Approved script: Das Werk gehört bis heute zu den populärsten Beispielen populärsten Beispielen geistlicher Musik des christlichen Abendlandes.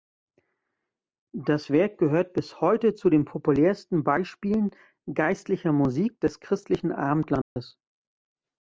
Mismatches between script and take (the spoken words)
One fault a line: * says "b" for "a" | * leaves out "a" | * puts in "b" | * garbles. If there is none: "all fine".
* leaves out "populärsten Beispielen"